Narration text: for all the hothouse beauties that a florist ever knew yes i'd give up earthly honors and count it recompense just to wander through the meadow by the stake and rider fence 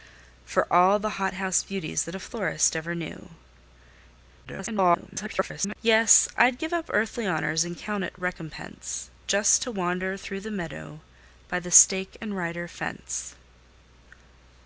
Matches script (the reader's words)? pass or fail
fail